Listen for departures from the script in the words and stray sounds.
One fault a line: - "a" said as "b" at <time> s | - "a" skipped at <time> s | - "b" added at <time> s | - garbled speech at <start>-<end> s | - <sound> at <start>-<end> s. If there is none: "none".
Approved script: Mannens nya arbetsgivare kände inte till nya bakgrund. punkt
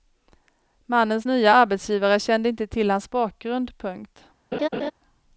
- "nya" said as "hans" at 2.9 s
- laugh at 4.5-4.9 s